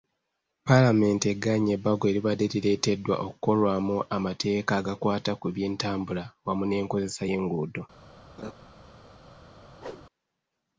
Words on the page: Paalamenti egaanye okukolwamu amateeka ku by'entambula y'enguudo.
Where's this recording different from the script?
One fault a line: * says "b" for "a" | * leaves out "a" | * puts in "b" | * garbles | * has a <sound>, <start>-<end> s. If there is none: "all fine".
* puts in "ebbago eribadde lireeteddwa"
* puts in "agakwata"
* puts in "wamu n'enkozesa"
* has a laugh, 8.4-8.5 s
* has a whoosh, 9.8-10.1 s